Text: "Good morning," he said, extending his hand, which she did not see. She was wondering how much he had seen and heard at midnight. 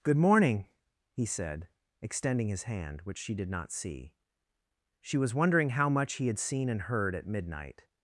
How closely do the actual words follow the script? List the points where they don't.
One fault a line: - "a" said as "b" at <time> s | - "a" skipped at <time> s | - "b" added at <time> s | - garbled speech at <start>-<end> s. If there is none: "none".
none